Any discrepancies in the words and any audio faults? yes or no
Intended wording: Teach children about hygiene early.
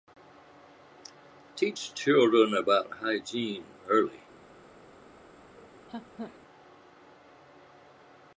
yes